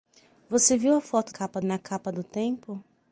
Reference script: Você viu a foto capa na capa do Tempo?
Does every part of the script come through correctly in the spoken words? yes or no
yes